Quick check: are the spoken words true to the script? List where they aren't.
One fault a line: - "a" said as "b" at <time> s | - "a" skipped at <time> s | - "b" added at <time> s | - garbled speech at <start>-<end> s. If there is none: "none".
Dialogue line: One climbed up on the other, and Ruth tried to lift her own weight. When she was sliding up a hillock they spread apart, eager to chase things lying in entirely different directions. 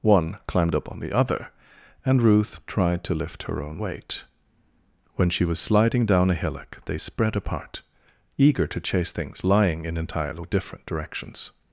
- "up" said as "down" at 6.0 s